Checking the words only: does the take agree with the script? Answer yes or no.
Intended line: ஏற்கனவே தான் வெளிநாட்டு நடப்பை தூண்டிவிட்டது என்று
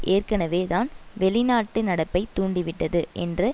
yes